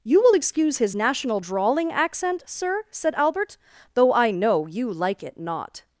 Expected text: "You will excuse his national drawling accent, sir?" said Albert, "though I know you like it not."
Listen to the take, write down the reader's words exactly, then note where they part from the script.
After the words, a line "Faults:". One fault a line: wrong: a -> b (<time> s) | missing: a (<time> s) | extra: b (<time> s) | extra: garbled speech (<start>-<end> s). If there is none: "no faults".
"You will excuse his national drawling accent, sir?" said Albert, "though I know you like it not."
Faults:
no faults